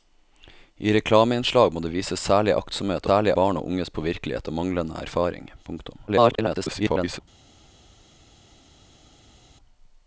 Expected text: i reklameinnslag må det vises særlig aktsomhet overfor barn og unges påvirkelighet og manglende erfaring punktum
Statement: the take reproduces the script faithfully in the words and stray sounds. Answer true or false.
false